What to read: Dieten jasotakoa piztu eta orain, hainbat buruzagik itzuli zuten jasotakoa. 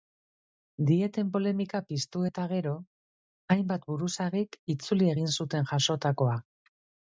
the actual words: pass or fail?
fail